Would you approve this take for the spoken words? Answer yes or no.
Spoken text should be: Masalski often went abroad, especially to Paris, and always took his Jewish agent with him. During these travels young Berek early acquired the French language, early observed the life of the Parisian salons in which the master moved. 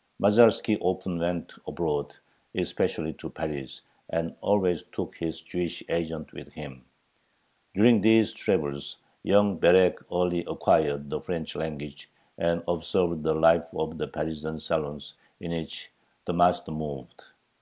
no